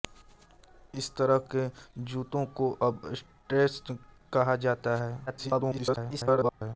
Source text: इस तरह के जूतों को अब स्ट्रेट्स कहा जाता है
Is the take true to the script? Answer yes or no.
no